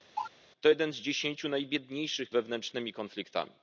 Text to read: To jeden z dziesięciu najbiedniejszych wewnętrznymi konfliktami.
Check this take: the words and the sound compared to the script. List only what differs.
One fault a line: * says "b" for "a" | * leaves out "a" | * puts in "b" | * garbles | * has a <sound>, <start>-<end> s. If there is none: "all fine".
* has a cough, 0.2-0.3 s